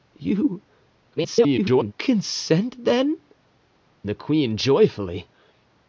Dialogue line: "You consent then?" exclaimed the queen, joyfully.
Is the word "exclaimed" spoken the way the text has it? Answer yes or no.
no